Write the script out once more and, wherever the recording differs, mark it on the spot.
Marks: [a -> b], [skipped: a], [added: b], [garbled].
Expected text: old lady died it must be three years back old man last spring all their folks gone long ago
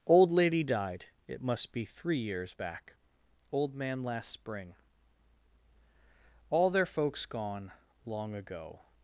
old lady died it must be three years back old man last spring all their folks gone long ago